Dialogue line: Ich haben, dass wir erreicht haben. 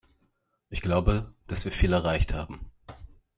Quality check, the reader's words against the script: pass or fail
fail